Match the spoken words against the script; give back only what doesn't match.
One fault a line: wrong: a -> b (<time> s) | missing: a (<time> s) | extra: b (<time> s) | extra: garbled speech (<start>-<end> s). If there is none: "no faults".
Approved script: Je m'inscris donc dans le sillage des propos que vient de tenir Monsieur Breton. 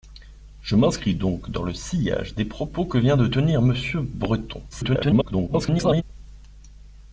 extra: garbled speech (4.7-6.0 s)